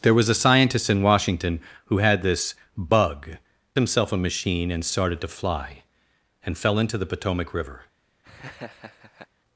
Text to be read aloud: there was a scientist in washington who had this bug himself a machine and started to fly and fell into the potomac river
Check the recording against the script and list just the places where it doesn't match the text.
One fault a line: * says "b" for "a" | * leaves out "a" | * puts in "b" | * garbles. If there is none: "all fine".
all fine